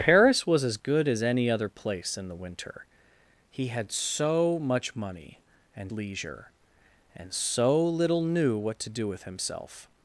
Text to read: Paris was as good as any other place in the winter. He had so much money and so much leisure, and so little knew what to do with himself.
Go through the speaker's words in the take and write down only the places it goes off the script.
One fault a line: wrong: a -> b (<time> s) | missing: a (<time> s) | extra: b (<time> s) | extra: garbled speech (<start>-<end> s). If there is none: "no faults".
missing: so much (5.9 s)